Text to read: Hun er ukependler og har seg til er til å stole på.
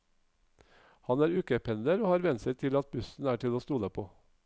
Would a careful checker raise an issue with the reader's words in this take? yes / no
yes